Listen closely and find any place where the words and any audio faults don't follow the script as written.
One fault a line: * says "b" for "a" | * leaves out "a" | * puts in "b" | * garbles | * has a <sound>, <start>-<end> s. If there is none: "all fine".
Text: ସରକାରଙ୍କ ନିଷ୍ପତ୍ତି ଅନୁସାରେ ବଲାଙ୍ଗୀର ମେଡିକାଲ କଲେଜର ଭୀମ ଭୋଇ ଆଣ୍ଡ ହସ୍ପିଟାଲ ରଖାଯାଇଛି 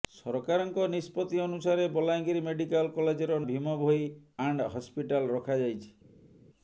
all fine